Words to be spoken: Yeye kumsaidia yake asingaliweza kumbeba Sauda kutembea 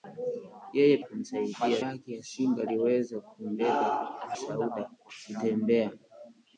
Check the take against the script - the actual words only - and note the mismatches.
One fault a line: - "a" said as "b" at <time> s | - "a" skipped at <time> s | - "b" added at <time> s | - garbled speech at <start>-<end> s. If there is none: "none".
none